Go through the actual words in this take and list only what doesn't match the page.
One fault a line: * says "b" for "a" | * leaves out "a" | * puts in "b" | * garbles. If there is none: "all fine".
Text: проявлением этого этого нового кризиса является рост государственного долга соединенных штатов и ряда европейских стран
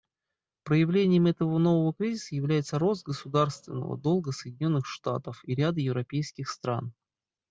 * leaves out "этого"